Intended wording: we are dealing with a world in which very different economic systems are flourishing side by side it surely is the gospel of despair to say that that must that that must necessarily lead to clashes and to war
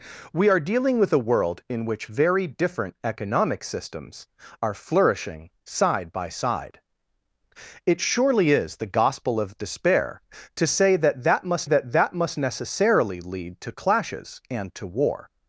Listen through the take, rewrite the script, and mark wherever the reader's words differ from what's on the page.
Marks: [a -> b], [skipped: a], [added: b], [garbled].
we are dealing with a world in which very different economic systems are flourishing side by side it surely is the gospel of despair to say that that must that that must necessarily lead to clashes and to war